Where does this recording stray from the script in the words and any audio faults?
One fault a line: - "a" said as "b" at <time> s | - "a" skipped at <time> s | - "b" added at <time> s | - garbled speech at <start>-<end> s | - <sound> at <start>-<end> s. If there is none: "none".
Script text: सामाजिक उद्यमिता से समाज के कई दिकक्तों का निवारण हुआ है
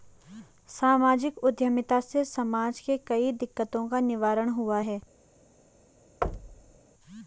- thud at 6.2-6.8 s